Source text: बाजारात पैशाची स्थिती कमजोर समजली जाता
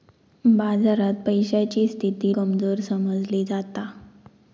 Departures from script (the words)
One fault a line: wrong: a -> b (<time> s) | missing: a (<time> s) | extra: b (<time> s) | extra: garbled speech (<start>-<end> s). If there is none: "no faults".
no faults